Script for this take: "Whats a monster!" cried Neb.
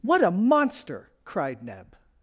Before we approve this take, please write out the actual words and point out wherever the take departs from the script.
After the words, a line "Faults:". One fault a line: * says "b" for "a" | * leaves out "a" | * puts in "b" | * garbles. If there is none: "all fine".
"What a monster!" cried Neb.
Faults:
* says "What" for "Whats"